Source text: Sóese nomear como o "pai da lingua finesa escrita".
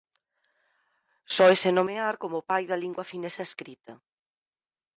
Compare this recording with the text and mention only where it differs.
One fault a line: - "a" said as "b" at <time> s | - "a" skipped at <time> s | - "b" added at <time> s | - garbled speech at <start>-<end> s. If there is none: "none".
none